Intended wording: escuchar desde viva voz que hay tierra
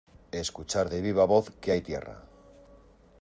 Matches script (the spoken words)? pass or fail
fail